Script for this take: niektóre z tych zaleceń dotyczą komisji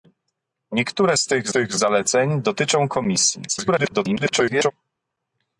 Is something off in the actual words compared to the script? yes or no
yes